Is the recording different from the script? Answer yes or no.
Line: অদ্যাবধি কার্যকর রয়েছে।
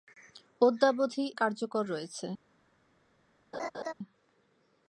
no